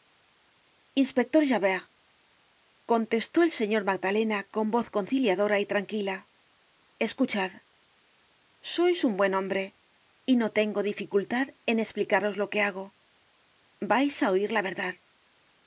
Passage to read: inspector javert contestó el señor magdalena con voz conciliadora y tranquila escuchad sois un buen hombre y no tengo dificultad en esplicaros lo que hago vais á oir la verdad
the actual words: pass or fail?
pass